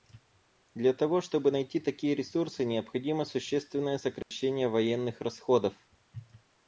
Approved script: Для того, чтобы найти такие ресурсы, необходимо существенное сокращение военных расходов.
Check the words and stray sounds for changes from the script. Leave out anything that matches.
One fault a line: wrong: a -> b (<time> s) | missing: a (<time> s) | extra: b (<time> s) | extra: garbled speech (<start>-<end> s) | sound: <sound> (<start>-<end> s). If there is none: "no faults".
sound: dropout (4.2-4.3 s)